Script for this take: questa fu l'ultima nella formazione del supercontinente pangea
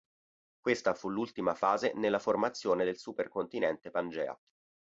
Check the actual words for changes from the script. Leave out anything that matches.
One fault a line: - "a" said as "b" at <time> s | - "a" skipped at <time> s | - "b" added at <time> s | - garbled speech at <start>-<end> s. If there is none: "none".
- "fase" added at 1.5 s